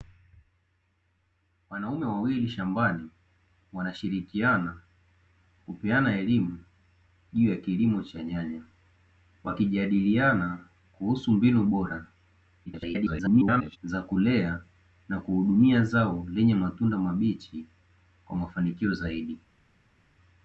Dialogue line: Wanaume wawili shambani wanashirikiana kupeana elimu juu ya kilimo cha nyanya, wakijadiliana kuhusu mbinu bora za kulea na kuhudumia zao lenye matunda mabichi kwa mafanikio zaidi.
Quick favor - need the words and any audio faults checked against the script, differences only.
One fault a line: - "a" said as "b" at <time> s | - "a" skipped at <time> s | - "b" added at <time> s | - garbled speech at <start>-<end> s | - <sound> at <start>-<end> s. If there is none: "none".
- garbled speech at 12.7-13.8 s